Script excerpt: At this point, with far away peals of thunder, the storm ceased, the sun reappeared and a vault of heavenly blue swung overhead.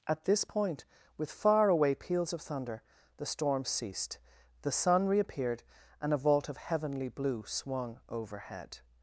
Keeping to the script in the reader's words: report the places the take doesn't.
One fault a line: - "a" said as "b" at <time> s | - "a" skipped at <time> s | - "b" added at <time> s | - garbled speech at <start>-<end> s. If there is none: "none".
none